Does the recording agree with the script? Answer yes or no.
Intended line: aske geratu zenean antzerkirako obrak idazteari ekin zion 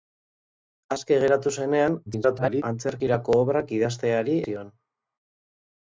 no